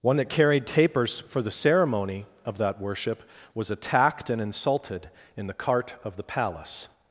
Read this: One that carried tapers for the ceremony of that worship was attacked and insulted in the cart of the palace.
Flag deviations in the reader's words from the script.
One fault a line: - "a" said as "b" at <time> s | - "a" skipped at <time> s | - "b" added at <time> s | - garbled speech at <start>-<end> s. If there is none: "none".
none